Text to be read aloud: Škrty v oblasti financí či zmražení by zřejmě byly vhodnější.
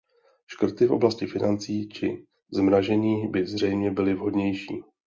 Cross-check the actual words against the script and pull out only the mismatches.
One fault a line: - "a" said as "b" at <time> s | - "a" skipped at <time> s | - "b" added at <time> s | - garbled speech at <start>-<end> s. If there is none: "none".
none